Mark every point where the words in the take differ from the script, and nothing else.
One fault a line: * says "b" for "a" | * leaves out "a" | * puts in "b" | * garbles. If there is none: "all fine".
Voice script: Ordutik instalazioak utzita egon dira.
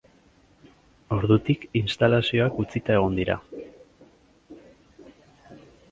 all fine